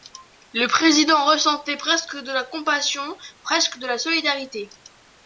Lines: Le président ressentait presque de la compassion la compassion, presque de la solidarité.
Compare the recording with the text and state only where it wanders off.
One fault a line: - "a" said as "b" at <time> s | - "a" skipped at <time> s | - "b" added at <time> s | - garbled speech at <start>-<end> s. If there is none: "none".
- "la compassion" skipped at 3.0 s